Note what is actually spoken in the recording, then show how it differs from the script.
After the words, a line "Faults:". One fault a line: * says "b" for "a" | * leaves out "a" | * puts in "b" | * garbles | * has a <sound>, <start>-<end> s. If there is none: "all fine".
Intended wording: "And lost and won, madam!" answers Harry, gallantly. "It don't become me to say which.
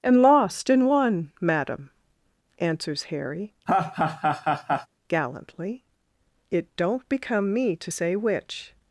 "And lost and won, madam!" answers Harry, gallantly. "It don't become me to say which.
Faults:
* has a laugh, 3.7-4.9 s